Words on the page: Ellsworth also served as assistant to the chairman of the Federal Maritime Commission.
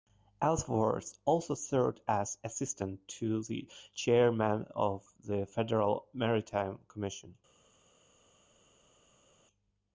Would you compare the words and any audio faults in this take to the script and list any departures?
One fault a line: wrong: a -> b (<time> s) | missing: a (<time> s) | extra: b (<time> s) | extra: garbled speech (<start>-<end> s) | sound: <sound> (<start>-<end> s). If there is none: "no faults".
no faults